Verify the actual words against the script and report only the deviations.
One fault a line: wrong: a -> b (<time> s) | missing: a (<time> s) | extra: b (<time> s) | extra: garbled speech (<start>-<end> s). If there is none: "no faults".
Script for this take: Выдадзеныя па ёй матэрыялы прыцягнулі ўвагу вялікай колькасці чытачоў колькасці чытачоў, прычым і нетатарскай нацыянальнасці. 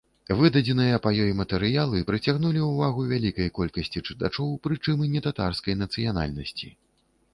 missing: колькасці чытачоў (4.5 s)